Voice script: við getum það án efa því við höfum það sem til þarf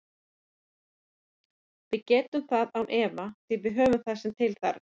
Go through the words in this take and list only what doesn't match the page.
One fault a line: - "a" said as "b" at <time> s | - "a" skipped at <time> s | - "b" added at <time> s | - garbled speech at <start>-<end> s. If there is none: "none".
none